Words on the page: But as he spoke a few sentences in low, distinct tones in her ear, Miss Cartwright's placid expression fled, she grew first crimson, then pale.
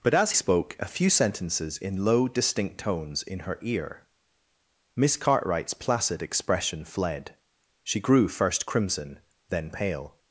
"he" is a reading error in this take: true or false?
true